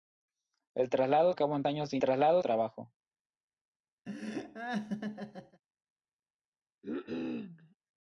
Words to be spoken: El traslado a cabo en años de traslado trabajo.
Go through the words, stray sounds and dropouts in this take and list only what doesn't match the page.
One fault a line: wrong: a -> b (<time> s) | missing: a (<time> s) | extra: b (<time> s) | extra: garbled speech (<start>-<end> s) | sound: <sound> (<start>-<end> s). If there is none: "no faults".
sound: laugh (4.1-5.6 s)
sound: cough (6.8-7.8 s)